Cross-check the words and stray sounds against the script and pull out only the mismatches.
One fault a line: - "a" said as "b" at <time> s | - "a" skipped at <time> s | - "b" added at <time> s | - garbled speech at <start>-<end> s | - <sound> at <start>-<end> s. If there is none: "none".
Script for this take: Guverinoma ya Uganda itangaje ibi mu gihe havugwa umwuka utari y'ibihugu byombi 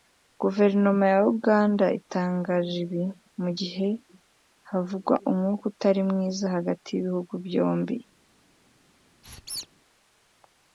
- "mwiza hagati" added at 6.1 s
- squeak at 9.2-9.7 s